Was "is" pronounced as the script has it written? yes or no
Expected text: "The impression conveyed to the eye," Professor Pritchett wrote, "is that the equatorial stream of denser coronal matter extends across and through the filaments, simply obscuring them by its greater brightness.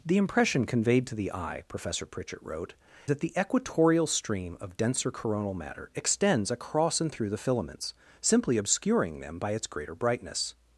no